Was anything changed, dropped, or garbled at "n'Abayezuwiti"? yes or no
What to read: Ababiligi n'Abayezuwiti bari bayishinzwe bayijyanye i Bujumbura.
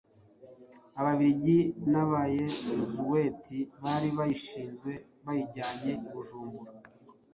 no